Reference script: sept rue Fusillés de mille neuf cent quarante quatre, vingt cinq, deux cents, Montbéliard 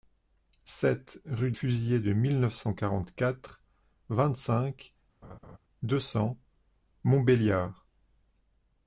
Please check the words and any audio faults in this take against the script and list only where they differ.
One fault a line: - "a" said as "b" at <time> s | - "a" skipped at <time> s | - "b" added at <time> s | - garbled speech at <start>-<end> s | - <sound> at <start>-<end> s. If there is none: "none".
- laugh at 5.2-5.6 s